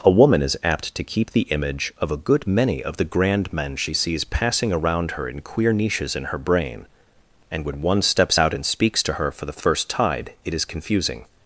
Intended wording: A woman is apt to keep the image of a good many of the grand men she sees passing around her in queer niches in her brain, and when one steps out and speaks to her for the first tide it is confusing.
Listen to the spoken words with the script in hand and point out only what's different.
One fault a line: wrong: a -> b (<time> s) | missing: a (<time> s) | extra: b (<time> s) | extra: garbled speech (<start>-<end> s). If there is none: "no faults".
no faults